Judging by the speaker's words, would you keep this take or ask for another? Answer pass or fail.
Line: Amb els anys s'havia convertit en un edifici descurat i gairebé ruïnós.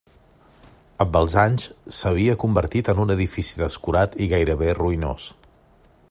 pass